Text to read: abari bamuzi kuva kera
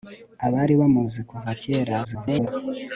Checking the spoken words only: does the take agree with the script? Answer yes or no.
no